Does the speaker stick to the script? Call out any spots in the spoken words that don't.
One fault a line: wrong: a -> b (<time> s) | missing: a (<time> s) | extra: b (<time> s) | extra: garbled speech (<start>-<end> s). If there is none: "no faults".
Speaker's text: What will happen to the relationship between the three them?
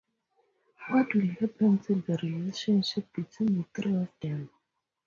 extra: of (4.0 s)